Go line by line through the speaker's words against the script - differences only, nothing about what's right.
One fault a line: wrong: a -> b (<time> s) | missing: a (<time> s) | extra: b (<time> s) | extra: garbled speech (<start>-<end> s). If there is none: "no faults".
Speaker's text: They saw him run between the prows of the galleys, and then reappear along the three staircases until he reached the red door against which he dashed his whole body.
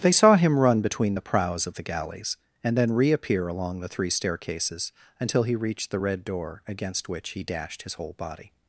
no faults